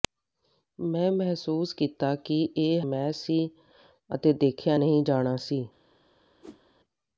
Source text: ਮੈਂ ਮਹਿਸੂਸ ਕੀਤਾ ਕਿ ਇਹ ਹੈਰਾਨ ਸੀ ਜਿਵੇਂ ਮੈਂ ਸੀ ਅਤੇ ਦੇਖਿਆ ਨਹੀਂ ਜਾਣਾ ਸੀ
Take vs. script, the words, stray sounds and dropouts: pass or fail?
fail